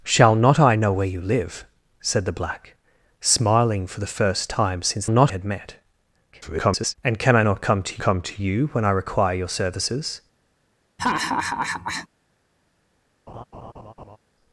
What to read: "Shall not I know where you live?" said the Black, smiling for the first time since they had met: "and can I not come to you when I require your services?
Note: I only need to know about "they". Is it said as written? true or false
false